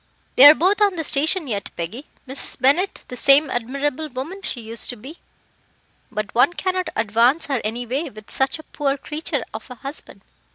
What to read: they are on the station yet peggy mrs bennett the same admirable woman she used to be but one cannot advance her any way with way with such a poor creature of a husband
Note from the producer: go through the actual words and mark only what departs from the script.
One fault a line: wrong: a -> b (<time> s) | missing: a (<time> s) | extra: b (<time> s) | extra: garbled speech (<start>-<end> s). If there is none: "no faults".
extra: both (0.6 s)
missing: way with (8.3 s)